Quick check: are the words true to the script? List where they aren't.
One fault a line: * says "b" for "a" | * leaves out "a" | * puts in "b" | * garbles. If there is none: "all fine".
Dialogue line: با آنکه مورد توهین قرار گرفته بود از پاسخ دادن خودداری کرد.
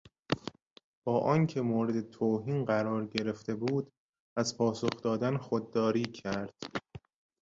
all fine